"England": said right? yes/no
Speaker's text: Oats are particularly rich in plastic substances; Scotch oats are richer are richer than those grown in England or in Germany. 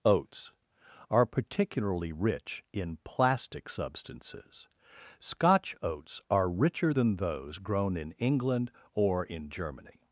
yes